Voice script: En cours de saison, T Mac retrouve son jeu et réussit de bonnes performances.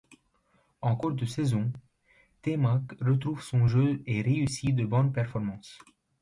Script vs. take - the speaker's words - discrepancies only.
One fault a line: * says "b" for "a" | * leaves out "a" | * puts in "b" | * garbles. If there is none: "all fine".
all fine